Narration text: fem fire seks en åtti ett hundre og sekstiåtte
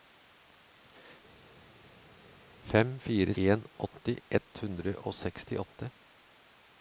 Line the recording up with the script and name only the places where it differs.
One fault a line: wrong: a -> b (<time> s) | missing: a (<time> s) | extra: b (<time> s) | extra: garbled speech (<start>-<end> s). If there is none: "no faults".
missing: seks (3.4 s)